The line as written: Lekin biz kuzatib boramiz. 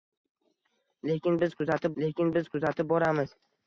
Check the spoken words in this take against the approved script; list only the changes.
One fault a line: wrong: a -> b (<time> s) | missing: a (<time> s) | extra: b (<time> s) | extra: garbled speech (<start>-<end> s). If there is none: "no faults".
extra: lekin biz kuzatib (2.0 s)